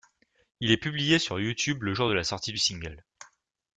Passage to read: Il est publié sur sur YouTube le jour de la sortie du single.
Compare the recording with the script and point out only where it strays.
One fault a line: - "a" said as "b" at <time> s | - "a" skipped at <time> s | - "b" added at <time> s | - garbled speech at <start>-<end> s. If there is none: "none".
- "sur" skipped at 1.4 s